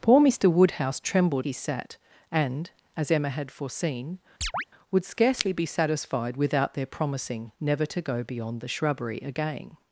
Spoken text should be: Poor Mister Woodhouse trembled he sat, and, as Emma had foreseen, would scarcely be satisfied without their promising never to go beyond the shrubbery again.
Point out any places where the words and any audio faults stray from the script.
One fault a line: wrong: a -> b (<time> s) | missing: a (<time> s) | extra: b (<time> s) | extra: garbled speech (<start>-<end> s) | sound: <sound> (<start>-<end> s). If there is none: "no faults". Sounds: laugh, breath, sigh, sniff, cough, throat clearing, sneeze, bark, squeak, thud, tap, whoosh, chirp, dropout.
sound: chirp (4.4-4.6 s)